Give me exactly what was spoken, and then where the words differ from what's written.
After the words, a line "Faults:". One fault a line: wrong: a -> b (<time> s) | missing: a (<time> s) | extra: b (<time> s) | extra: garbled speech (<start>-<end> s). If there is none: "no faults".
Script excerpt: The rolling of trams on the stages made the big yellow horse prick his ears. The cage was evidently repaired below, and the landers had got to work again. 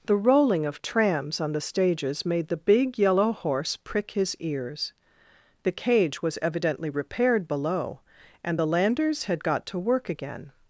The rolling of trams on the stages made the big yellow horse prick his ears. The cage was evidently repaired below, and the landers had got to work again.
Faults:
no faults